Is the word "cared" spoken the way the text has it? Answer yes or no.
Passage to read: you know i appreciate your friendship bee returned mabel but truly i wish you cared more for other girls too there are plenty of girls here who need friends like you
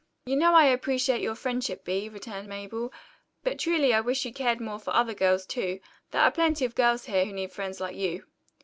yes